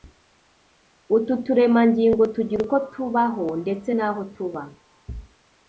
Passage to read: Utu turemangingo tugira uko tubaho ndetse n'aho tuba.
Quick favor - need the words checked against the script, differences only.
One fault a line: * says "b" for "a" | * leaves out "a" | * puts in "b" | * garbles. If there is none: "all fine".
all fine